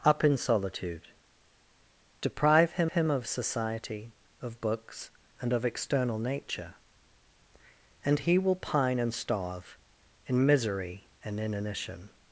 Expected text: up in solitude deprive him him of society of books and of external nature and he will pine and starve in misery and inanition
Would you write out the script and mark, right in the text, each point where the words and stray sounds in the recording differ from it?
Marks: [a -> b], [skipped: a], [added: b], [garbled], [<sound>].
up in solitude deprive him him of society of books and of external nature and he will pine and starve in misery and inanition